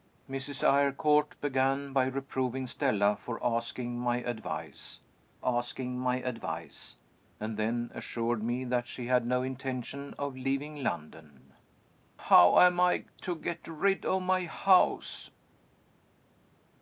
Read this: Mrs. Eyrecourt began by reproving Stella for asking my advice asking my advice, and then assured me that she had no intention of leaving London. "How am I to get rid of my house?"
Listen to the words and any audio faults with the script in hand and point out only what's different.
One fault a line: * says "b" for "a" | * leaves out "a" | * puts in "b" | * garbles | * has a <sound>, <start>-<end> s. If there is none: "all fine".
all fine